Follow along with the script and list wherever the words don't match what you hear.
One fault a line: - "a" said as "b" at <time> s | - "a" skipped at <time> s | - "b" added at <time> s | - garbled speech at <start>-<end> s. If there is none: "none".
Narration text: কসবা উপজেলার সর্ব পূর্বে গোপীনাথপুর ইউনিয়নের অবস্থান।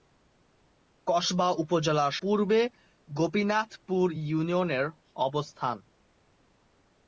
- "সর্ব" skipped at 2.1 s